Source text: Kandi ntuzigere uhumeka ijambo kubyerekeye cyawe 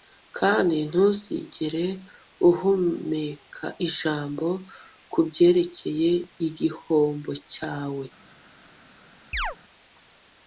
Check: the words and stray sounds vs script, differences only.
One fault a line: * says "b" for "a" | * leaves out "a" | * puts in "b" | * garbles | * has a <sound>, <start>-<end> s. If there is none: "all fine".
* puts in "igihombo"
* has a chirp, 9.3-9.6 s